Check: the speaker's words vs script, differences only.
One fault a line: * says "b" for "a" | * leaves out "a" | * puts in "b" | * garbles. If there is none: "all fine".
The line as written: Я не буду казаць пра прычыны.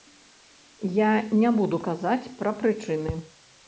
all fine